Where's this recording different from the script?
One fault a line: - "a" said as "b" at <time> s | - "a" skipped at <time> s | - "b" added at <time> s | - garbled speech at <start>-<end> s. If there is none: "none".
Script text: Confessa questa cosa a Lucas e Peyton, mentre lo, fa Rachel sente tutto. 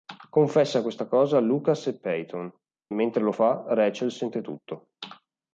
none